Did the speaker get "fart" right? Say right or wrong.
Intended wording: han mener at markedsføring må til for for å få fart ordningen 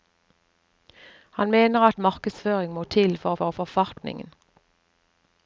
right